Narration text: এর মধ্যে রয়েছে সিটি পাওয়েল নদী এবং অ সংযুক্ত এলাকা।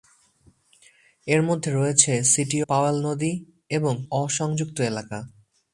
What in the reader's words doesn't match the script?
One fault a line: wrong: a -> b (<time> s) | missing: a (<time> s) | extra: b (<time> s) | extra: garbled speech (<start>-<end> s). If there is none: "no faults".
no faults